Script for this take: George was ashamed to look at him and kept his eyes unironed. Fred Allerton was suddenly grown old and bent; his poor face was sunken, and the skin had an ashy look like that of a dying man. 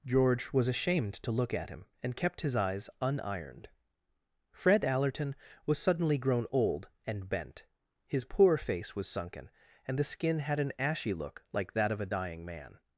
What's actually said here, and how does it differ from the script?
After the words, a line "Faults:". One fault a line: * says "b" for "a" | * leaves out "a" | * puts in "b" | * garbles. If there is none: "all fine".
George was ashamed to look at him and kept his eyes unironed. Fred Allerton was suddenly grown old and bent; his poor face was sunken, and the skin had an ashy look like that of a dying man.
Faults:
all fine